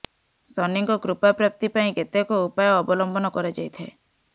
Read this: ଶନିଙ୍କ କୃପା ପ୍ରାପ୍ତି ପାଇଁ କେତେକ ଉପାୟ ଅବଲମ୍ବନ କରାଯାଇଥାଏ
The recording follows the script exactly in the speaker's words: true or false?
true